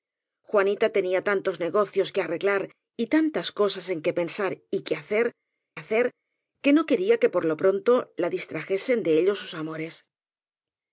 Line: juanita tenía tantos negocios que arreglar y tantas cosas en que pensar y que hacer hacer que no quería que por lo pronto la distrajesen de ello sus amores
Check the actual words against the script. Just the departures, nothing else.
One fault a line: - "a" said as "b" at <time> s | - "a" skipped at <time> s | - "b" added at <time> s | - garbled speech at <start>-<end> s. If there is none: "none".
none